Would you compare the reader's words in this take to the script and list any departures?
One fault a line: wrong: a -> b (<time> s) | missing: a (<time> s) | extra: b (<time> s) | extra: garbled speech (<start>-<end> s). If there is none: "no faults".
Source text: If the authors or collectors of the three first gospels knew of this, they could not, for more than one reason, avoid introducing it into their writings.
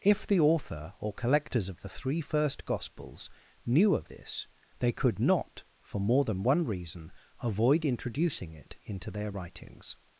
wrong: authors -> author (0.4 s)